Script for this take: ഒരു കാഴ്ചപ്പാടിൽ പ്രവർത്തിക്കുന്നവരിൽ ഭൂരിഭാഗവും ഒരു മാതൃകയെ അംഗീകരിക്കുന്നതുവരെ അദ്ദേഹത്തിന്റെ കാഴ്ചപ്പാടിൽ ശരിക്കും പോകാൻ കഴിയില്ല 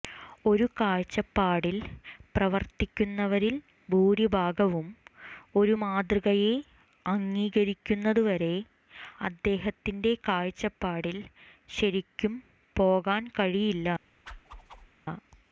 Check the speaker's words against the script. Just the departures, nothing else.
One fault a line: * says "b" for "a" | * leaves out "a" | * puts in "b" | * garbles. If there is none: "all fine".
all fine